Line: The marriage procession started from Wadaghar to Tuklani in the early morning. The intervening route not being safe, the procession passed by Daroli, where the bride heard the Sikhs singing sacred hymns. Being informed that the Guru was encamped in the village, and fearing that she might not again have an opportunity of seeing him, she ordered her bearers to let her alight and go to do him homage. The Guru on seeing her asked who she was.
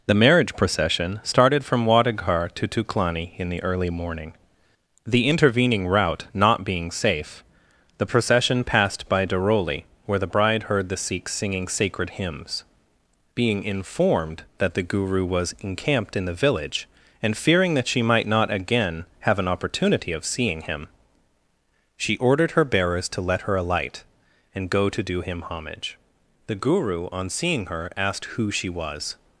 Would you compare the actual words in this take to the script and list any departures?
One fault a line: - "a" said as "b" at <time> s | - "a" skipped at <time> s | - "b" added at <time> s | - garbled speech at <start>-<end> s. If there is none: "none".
none